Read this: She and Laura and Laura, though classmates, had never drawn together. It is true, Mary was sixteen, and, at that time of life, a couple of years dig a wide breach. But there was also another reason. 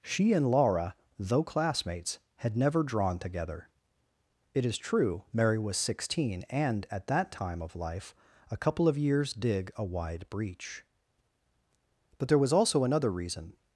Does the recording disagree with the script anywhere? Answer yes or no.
yes